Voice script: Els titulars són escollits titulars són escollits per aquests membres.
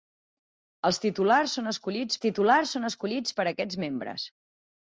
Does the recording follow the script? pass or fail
pass